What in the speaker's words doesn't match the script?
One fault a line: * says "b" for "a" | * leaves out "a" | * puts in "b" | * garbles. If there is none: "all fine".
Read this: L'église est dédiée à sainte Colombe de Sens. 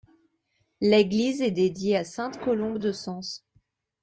all fine